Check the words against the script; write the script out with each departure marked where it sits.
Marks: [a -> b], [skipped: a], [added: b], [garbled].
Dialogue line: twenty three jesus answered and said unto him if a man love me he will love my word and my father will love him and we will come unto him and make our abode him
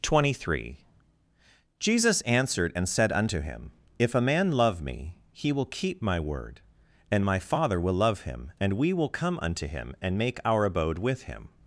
twenty three jesus answered and said unto him if a man love me he will [love -> keep] my word and my father will love him and we will come unto him and make our abode [added: with] him